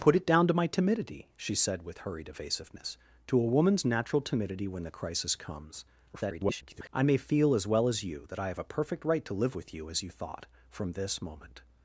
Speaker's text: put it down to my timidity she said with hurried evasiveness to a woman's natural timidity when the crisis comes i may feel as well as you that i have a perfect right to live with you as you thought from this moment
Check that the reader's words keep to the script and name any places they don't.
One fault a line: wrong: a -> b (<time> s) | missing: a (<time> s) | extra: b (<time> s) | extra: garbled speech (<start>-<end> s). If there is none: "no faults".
extra: garbled speech (6.1-6.9 s)